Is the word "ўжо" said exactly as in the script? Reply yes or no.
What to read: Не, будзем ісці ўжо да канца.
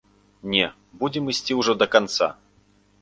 yes